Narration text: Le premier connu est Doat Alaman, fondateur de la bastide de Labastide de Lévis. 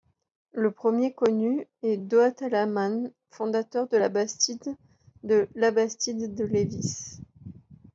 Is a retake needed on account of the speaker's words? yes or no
no